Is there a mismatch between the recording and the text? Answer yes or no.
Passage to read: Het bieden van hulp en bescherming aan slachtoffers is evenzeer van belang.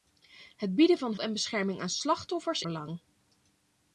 yes